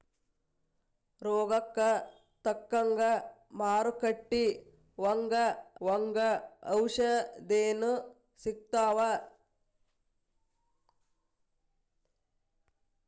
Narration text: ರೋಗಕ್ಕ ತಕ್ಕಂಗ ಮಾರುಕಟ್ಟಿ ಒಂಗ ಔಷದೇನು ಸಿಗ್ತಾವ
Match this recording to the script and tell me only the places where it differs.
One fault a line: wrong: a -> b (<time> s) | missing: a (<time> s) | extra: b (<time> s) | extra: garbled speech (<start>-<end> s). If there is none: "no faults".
extra: ಒಂಗ (5.9 s)